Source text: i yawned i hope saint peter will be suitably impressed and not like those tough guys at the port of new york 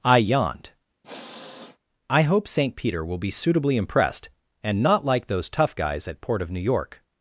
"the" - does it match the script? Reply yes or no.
no